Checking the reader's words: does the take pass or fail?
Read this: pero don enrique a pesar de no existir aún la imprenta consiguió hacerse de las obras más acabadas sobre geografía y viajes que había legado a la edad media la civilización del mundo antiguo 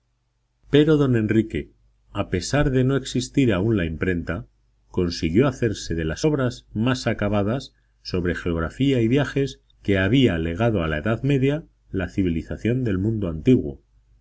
pass